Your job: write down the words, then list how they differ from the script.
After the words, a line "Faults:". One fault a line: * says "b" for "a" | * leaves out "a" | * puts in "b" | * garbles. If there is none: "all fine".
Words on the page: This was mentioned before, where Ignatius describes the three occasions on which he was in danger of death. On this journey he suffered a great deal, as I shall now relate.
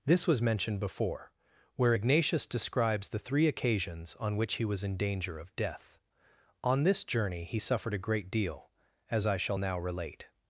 This was mentioned before, where Ignatius describes the three occasions on which he was in danger of death. On this journey he suffered a great deal, as I shall now relate.
Faults:
all fine